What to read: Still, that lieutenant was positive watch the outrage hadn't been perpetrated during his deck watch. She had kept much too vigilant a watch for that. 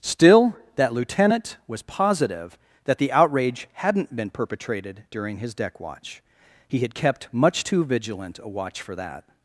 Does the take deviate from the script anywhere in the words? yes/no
yes